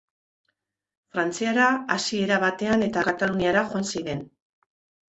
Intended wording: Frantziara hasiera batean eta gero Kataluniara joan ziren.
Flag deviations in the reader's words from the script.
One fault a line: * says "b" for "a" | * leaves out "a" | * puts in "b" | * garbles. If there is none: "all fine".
* leaves out "gero"